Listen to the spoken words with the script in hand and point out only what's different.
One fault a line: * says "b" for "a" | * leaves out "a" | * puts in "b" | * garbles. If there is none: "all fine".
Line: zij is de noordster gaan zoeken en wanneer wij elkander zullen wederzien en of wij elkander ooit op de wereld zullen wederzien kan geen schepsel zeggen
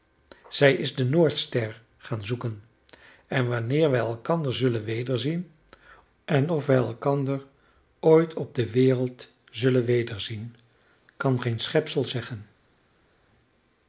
all fine